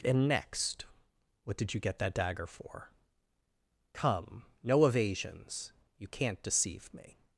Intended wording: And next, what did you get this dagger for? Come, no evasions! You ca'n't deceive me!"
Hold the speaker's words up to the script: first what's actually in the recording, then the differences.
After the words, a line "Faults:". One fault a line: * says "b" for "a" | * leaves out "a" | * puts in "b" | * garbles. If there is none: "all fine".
And next, what did you get that dagger for? Come, no evasions! You ca'n't deceive me!"
Faults:
* says "that" for "this"